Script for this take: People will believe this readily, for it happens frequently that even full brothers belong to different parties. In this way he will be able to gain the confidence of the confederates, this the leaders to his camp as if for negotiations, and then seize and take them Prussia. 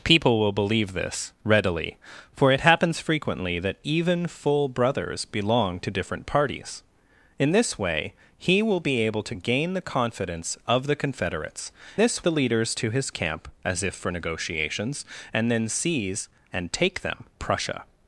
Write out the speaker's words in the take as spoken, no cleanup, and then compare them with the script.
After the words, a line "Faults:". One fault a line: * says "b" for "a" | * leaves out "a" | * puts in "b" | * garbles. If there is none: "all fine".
People will believe this readily, for it happens frequently that even full brothers belong to different parties. In this way he will be able to gain the confidence of the confederates, this the leaders to his camp as if for negotiations, and then seize and take them Prussia.
Faults:
all fine